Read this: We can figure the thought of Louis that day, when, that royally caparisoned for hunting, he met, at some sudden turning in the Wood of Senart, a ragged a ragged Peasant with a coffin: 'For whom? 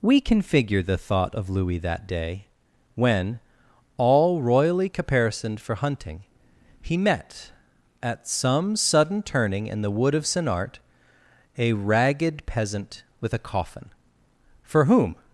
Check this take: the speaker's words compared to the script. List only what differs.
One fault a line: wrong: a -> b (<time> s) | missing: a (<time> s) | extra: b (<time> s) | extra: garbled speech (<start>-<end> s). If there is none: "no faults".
wrong: that -> all (4.0 s)
missing: a ragged (12.5 s)